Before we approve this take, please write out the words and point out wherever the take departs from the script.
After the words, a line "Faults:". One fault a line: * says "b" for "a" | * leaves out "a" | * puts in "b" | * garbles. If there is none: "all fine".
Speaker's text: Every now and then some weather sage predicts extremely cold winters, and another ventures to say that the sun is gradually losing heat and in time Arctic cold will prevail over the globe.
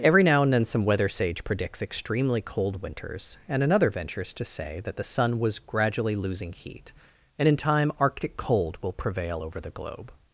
Every now and then some weather sage predicts extremely cold winters, and another ventures to say that the sun was gradually losing heat and in time Arctic cold will prevail over the globe.
Faults:
* says "was" for "is"